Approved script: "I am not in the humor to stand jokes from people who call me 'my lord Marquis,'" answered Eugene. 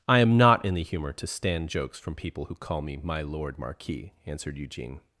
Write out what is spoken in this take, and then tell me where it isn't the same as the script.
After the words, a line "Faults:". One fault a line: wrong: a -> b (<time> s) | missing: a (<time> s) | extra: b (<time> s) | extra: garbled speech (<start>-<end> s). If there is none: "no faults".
"I am not in the humor to stand jokes from people who call me 'my lord Marquis,'" answered Eugene.
Faults:
no faults